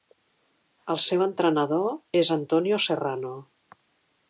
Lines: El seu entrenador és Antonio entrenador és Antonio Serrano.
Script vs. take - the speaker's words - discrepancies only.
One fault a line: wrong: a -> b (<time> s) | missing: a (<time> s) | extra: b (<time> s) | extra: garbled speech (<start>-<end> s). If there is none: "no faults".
missing: entrenador és Antonio (2.8 s)